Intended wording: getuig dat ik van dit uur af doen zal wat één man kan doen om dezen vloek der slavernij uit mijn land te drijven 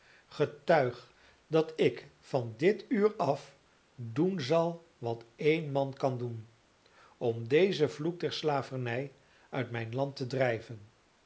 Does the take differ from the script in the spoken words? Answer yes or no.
no